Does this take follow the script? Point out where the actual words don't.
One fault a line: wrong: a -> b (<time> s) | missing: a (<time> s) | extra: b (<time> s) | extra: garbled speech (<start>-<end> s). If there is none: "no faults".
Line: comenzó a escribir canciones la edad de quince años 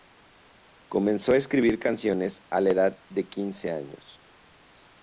extra: a (2.5 s)